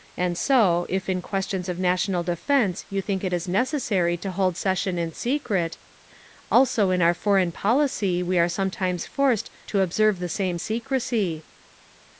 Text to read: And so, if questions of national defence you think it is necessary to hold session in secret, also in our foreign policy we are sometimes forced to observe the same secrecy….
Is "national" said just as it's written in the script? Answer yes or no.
yes